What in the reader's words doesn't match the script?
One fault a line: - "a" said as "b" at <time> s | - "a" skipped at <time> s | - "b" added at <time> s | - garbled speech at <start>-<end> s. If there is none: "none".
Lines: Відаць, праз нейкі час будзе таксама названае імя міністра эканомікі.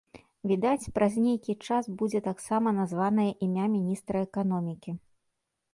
none